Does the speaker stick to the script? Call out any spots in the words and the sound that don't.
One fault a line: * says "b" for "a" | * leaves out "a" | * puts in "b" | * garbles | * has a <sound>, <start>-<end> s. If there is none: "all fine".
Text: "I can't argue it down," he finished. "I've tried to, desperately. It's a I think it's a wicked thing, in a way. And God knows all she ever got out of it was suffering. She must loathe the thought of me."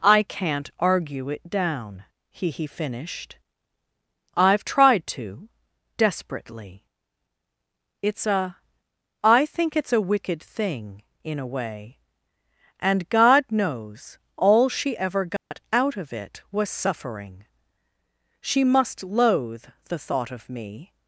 * puts in "he"
* has a dropout, 15.4-15.5 s